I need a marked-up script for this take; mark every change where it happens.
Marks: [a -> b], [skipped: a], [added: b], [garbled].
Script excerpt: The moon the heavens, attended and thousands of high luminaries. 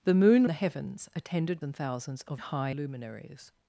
The moon the heavens, attended and thousands of high luminaries.